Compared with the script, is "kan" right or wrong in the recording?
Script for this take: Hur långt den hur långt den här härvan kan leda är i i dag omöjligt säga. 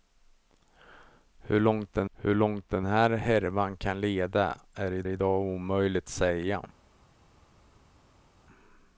right